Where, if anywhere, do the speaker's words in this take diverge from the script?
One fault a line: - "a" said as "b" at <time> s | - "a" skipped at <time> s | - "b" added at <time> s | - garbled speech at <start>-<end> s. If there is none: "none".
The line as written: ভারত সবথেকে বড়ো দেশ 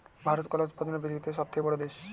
- "কলা উৎপাদনে পৃথিবীতে" added at 0.5 s